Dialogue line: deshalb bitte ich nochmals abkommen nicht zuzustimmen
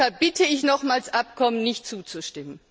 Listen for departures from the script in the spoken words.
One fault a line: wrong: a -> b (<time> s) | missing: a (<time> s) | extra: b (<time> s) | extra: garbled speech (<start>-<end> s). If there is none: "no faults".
no faults